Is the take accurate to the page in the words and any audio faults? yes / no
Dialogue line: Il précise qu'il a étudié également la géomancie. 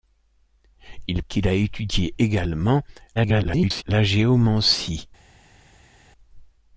no